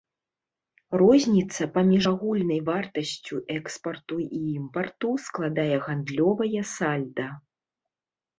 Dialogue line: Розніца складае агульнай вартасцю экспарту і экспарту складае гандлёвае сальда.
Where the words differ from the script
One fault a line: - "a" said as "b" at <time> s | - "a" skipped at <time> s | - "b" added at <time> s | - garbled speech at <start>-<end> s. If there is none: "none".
- "складае" said as "паміж" at 1.8 s
- "экспарту" said as "імпарту" at 4.6 s